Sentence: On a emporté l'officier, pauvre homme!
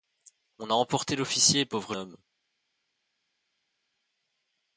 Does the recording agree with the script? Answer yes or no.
yes